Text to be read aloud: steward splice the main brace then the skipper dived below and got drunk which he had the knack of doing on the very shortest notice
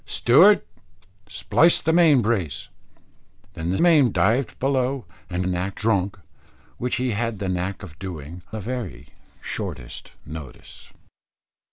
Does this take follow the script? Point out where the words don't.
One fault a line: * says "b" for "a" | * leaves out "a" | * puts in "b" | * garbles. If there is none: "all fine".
* says "main" for "skipper"
* says "knack" for "got"
* leaves out "on"